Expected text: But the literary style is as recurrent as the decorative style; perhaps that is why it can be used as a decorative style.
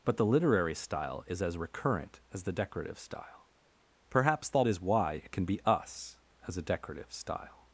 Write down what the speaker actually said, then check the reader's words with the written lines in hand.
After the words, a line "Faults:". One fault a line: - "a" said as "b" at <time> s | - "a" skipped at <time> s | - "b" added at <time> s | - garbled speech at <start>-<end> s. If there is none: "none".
But the literary style is as recurrent as the decorative style; perhaps that is why it can be us as a decorative style.
Faults:
- "used" said as "us" at 5.7 s